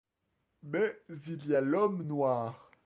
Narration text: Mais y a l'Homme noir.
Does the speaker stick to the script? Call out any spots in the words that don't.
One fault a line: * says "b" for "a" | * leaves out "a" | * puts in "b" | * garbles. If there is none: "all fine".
* puts in "il"